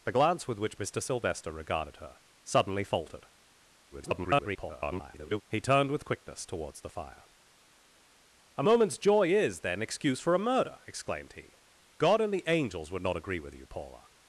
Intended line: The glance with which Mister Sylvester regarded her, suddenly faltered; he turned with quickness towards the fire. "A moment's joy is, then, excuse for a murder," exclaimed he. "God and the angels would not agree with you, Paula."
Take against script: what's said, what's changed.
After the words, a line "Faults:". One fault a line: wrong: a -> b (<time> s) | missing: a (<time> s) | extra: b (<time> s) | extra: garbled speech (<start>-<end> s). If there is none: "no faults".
The glance with which Mister Sylvester regarded her, suddenly faltered; [garbled] he turned with quickness towards the fire. "A moment's joy is, then, excuse for a murder," exclaimed he. "God and the angels would not agree with you, Paula."
Faults:
extra: garbled speech (3.9-5.4 s)